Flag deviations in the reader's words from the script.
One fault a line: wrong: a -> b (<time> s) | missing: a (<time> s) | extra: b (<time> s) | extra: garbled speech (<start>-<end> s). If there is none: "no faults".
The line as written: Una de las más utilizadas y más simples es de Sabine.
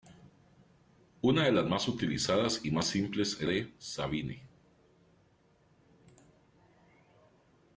no faults